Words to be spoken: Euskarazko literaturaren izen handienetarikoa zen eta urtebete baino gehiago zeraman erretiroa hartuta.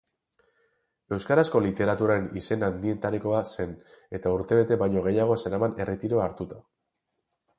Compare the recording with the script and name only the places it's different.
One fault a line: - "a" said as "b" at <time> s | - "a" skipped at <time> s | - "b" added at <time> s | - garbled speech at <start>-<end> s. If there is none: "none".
none